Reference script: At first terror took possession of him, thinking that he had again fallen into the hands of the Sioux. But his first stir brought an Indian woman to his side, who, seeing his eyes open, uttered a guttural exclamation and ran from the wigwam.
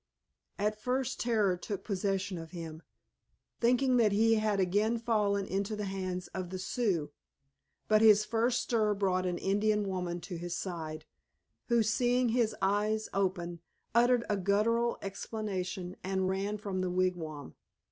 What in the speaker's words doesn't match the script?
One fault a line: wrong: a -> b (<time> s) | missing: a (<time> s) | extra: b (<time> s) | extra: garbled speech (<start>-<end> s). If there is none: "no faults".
no faults